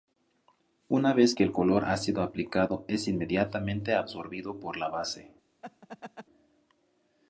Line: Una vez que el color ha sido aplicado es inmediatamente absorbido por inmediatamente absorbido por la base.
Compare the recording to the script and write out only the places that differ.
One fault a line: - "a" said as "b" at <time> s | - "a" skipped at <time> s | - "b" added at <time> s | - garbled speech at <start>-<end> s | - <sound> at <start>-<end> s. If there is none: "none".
- "inmediatamente absorbido por" skipped at 4.8 s
- laugh at 5.6-6.3 s